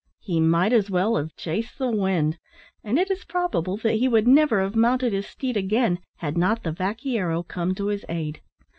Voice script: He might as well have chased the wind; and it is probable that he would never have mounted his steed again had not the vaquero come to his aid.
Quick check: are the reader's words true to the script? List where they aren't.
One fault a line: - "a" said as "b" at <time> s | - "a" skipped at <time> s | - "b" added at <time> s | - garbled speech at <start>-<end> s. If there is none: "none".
none